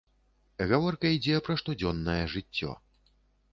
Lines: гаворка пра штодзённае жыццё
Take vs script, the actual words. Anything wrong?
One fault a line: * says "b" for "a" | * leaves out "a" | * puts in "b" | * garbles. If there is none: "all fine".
* puts in "ідзе"